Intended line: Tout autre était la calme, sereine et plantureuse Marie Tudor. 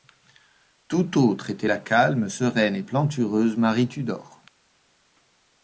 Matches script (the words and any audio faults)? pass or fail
pass